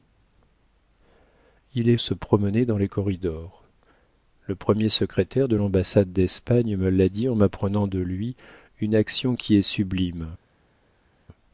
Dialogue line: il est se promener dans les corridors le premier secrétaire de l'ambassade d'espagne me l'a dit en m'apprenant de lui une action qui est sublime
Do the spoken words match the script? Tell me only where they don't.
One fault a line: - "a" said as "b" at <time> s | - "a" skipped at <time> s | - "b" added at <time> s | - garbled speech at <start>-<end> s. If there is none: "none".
none